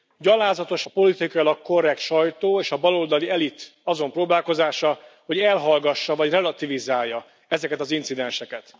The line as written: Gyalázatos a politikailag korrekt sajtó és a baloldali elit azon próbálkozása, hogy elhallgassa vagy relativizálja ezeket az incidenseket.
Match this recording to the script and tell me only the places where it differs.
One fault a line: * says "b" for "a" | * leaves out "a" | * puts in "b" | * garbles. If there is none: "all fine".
all fine